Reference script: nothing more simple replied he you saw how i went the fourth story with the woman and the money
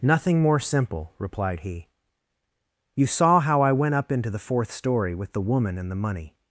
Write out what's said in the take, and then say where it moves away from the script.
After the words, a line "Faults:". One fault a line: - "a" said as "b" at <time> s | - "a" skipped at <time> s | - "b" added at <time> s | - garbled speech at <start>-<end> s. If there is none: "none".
nothing more simple replied he you saw how i went up into the fourth story with the woman and the money
Faults:
- "up into" added at 4.0 s